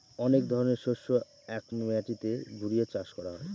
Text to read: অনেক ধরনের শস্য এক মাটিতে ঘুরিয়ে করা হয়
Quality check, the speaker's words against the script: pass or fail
fail